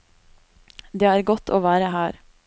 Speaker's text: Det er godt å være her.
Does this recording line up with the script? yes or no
yes